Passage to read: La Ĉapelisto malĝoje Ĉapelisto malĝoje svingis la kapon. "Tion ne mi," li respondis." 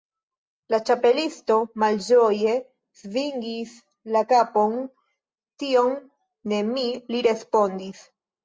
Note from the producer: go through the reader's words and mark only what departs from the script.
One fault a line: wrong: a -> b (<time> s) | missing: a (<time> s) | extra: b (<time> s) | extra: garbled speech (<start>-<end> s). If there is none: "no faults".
missing: Ĉapelisto malĝoje (2.5 s)